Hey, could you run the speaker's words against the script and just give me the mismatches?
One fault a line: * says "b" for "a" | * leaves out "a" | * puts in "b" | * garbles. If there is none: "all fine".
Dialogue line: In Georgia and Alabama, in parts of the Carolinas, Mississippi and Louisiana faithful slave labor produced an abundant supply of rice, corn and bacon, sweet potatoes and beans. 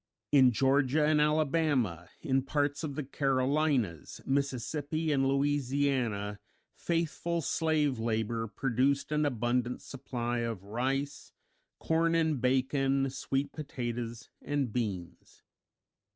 all fine